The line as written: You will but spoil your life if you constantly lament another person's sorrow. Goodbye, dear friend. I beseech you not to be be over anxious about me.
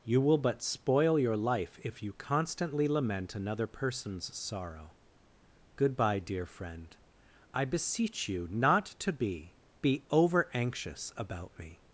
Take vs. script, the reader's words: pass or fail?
pass